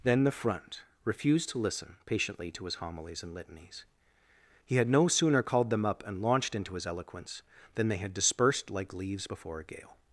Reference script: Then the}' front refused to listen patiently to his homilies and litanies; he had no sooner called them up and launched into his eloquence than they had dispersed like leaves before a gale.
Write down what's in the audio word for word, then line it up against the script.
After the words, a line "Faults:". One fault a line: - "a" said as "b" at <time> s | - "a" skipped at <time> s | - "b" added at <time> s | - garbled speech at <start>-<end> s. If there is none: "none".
Then the}' front refused to listen patiently to his homilies and litanies; he had no sooner called them up and launched into his eloquence than they had dispersed like leaves before a gale.
Faults:
none